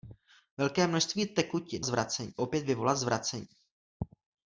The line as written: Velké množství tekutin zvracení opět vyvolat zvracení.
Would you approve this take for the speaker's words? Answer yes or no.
yes